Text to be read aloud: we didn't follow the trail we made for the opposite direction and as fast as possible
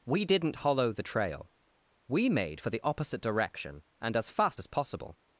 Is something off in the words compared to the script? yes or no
yes